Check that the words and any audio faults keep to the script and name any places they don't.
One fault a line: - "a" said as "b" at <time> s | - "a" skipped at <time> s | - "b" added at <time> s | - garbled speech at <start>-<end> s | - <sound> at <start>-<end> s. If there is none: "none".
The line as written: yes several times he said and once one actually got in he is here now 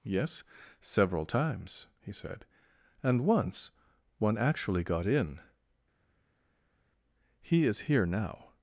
none